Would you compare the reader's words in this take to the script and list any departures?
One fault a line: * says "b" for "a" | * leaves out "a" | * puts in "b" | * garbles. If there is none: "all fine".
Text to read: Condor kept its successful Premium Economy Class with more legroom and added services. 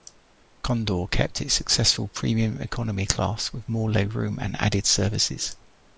all fine